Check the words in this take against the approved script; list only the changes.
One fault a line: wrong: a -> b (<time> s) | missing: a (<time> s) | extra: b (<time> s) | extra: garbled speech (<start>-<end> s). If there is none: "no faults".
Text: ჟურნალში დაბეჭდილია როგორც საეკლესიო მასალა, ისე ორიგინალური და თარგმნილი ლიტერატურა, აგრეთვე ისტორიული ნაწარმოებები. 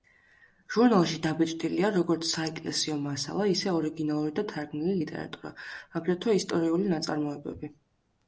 no faults